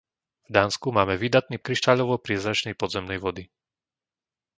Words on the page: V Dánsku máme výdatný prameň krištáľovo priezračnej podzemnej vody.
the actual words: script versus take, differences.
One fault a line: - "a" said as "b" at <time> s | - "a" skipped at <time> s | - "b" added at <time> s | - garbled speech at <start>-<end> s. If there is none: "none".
- "prameň" skipped at 1.6 s